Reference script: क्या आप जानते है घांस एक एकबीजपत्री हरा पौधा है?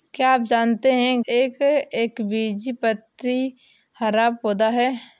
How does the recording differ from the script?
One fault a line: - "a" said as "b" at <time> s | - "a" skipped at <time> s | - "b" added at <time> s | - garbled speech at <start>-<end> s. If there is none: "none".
- "घांस" skipped at 1.2 s